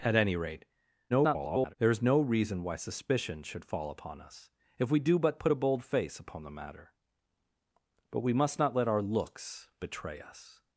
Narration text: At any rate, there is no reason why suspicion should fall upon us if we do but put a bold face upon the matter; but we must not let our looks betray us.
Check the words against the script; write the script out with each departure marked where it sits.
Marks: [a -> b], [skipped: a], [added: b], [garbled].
At any rate, [garbled] there is no reason why suspicion should fall upon us if we do but put a bold face upon the matter; but we must not let our looks betray us.